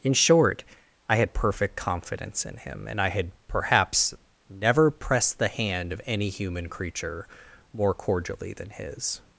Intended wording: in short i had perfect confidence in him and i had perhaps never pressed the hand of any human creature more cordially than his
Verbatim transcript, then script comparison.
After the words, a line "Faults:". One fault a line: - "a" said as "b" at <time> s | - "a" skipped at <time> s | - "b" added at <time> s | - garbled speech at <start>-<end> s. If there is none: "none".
in short i had perfect confidence in him and i had perhaps never pressed the hand of any human creature more cordially than his
Faults:
none